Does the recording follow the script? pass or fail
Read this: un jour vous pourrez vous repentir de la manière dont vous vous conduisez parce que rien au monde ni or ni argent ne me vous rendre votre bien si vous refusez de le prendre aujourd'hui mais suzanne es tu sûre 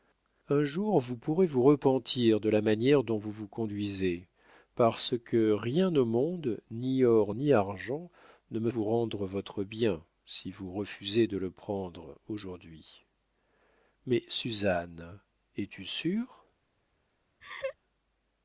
pass